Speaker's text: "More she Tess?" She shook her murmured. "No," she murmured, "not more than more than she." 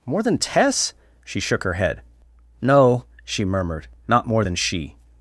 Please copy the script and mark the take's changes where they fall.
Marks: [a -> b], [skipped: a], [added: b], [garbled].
"More [she -> than] Tess?" She shook her [murmured. -> head] "No," she murmured, "not more than [skipped: more than] she."